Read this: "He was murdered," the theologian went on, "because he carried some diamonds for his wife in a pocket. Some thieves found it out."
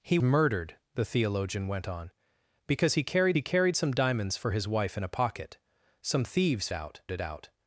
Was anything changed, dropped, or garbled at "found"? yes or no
yes